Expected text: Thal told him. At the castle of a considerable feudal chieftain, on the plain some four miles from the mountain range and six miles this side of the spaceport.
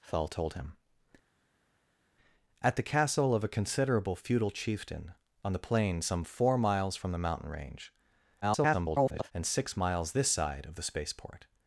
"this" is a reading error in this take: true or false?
false